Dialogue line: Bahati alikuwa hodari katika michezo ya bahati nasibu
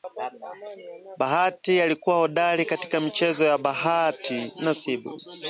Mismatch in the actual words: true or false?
false